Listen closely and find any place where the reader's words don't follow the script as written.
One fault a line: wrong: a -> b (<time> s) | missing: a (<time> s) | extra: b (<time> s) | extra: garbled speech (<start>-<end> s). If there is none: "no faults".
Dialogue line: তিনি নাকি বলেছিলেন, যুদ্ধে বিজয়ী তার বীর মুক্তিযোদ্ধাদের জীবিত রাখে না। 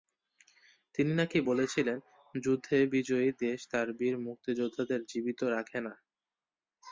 extra: দেশ (3.4 s)